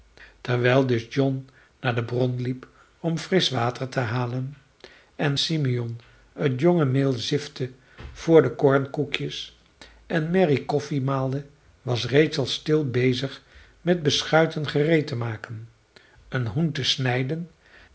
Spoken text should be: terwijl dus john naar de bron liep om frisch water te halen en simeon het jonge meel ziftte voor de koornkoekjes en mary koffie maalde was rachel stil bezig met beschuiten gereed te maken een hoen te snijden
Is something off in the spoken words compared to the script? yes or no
no